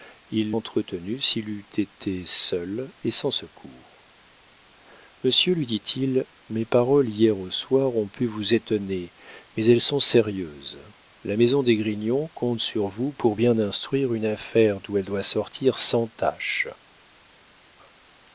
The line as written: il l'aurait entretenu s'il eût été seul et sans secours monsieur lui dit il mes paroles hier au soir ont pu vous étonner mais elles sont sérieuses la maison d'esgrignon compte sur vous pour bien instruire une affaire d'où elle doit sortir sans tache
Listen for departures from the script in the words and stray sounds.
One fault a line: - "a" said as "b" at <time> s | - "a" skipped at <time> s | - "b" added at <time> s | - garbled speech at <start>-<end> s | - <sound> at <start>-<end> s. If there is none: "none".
- "l'aurait" skipped at 0.6 s